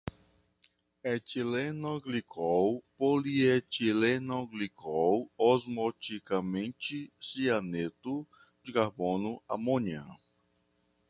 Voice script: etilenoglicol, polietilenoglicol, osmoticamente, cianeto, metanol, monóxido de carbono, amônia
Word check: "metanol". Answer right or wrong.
wrong